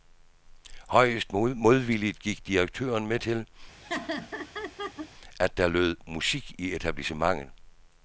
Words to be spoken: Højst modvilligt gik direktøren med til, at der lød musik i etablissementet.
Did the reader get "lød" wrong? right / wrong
right